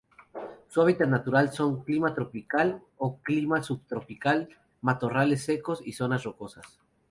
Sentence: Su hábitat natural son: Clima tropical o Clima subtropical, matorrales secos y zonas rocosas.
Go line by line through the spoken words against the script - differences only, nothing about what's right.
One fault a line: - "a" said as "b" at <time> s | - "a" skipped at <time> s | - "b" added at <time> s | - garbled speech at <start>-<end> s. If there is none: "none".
none